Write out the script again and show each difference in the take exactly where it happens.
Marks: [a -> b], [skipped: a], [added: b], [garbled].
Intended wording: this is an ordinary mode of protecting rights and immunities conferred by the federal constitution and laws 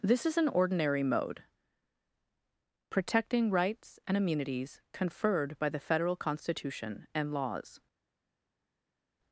this is an ordinary mode [skipped: of] protecting rights and immunities conferred by the federal constitution and laws